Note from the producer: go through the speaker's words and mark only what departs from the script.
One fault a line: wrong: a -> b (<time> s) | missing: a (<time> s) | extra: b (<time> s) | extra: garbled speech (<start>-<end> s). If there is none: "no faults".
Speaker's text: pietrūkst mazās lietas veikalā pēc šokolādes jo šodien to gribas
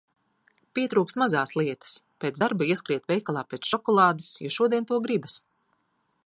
extra: pēc darba ieskriet (2.2 s)